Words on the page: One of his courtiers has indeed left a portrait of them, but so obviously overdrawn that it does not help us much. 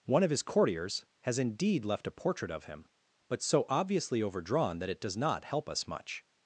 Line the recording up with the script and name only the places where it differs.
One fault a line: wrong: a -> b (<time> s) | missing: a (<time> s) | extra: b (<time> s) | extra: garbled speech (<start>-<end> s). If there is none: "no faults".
wrong: them -> him (2.6 s)